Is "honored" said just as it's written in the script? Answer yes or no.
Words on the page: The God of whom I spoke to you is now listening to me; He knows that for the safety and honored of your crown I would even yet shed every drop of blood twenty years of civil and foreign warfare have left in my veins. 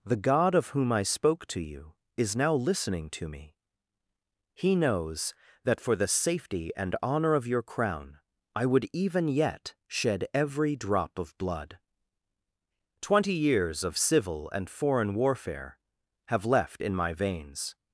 no